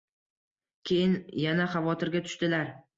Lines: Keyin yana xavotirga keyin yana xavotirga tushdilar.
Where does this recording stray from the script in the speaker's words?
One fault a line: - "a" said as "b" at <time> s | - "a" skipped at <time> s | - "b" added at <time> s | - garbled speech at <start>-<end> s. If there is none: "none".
- "keyin yana xavotirga" skipped at 2.3 s